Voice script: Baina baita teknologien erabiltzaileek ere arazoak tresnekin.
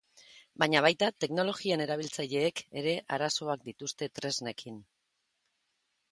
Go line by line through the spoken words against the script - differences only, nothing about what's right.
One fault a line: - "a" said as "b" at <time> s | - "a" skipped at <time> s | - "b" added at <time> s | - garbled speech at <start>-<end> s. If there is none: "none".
- "dituzte" added at 3.7 s